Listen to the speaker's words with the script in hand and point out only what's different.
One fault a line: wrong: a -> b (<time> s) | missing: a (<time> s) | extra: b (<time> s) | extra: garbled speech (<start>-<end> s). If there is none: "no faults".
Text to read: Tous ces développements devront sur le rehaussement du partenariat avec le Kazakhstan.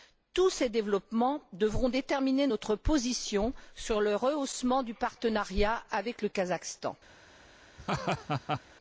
extra: déterminer notre position (1.9 s)